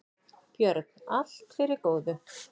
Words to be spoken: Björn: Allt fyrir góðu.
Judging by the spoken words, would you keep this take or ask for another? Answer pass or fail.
pass